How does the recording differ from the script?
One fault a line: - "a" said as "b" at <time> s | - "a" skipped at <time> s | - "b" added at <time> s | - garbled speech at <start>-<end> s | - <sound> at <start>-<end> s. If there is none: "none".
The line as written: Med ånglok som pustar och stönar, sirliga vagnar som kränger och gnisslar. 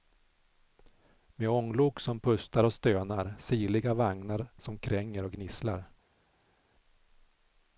none